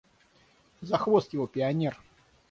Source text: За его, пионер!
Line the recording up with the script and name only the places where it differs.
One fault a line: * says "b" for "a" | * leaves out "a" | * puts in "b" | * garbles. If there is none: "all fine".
* puts in "хвост"